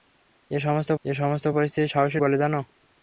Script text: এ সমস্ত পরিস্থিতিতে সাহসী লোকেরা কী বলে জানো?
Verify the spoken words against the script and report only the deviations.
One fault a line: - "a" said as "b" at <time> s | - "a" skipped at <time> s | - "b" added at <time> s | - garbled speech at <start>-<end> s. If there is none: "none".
- "এ সমস্ত" added at 1.1 s
- "লোকেরা কী" skipped at 2.2 s